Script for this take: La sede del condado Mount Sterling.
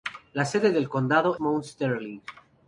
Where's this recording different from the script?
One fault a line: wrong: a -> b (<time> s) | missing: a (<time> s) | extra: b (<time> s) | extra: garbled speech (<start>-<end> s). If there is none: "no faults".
no faults